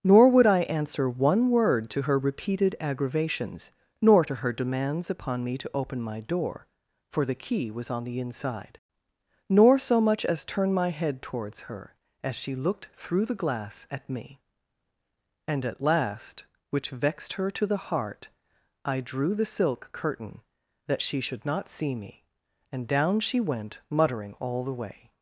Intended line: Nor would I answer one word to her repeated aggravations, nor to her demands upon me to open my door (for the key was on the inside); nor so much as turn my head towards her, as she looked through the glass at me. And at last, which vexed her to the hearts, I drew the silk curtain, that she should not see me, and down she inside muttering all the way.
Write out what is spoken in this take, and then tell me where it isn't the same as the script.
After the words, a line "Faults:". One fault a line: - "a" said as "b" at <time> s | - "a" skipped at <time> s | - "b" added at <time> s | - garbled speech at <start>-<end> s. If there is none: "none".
Nor would I answer one word to her repeated aggravations, nor to her demands upon me to open my door (for the key was on the inside); nor so much as turn my head towards her, as she looked through the glass at me. And at last, which vexed her to the heart, I drew the silk curtain, that she should not see me, and down she went muttering all the way.
Faults:
- "hearts" said as "heart" at 17.9 s
- "inside" said as "went" at 23.4 s